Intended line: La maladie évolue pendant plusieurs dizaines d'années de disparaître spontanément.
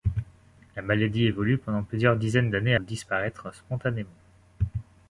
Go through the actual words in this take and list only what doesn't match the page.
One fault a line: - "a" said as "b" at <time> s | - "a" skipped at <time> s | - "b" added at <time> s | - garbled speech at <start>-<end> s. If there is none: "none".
none